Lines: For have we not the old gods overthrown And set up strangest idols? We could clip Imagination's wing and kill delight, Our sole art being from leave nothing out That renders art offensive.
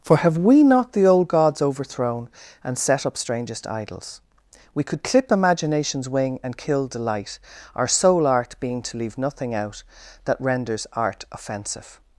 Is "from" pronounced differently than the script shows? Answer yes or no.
yes